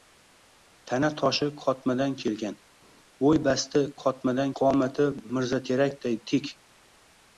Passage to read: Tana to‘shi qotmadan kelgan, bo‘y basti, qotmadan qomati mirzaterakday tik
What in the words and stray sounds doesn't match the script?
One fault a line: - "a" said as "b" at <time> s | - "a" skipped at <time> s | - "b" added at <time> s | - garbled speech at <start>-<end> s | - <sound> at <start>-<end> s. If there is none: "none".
none